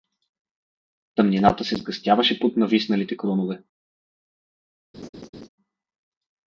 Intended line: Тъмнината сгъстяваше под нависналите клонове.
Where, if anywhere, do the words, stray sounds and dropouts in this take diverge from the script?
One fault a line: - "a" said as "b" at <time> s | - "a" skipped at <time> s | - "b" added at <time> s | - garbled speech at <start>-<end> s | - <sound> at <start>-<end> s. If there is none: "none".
- "се" added at 1.6 s
- laugh at 4.9-5.5 s